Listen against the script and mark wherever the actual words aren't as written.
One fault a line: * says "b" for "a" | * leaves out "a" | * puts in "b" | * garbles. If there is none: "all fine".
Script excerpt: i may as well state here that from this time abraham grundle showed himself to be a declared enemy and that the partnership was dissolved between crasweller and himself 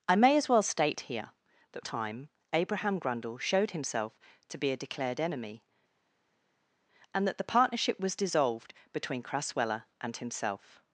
* leaves out "from this"